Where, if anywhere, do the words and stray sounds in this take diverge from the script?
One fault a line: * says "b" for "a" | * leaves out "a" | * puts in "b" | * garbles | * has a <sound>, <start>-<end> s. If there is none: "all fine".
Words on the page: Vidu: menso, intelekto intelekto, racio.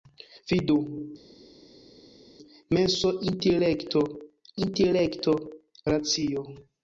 all fine